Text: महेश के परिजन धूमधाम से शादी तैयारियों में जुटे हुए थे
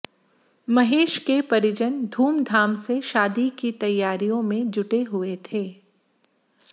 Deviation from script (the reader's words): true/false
true